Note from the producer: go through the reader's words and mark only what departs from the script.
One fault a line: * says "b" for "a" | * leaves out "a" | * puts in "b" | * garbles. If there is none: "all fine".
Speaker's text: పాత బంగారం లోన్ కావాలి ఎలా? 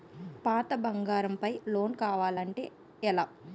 * puts in "పై"
* puts in "అంటే"